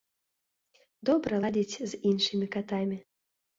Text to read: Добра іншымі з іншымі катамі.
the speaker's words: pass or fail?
fail